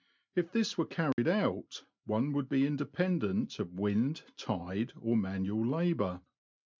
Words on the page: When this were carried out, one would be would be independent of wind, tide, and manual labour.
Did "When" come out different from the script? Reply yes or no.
yes